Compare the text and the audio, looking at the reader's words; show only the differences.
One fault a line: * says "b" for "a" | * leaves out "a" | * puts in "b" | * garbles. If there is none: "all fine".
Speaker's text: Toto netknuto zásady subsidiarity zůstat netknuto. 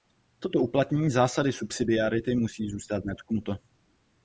* says "uplatnění" for "netknuto"
* puts in "musí"